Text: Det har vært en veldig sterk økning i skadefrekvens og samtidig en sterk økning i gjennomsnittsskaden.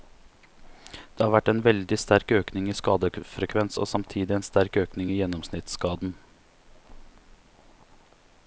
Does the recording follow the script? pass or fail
pass